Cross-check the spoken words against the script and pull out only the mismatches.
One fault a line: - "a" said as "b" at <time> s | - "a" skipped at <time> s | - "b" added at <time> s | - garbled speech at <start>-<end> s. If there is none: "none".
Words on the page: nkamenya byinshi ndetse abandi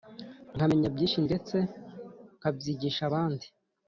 - "nkabyigisha" added at 2.4 s